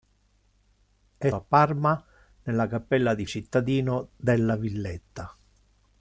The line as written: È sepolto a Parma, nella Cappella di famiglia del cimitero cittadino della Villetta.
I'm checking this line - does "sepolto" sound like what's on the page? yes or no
no